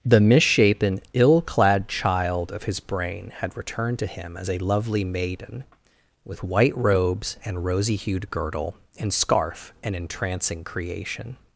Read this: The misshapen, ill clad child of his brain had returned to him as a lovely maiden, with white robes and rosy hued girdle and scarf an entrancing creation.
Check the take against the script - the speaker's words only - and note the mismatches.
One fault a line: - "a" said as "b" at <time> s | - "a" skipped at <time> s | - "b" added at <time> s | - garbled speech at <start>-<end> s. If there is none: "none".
none